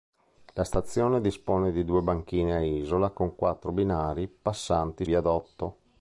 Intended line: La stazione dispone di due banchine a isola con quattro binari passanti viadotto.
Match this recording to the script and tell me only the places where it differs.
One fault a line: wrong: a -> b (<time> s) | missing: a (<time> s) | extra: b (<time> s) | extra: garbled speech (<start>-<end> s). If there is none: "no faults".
no faults